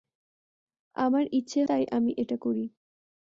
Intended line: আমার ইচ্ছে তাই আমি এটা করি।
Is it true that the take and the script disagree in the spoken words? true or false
false